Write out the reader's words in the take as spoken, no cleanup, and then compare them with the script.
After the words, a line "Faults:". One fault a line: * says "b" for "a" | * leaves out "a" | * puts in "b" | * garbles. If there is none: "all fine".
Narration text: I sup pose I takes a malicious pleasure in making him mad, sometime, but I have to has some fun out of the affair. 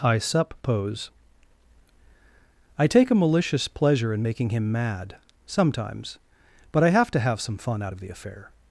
I sup pose I take a malicious pleasure in making him mad, sometimes, but I have to have some fun out of the affair.
Faults:
* says "take" for "takes"
* says "sometimes" for "sometime"
* says "have" for "has"